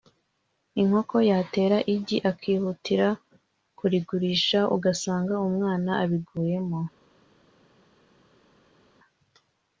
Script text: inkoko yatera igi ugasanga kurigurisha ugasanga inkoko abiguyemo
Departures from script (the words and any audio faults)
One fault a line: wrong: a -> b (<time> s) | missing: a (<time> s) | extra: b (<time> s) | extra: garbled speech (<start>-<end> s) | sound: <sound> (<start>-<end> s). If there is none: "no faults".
wrong: ugasanga -> akihutira (2.3 s)
wrong: inkoko -> umwana (5.5 s)